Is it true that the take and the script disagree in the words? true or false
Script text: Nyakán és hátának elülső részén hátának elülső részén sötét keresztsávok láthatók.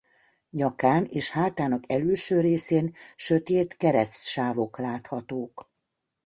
true